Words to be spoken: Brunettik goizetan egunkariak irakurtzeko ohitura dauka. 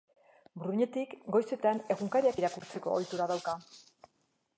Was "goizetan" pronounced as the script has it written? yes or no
yes